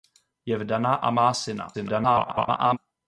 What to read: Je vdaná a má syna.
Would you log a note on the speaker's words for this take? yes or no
yes